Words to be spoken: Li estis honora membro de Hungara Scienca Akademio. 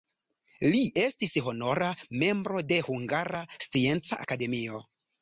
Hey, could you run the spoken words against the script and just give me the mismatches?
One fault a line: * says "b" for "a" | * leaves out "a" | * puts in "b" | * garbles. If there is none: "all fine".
all fine